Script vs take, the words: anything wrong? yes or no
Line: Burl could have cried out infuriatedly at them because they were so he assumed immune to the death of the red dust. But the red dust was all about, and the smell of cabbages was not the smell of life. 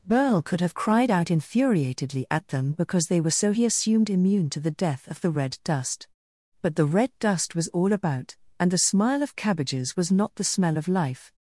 yes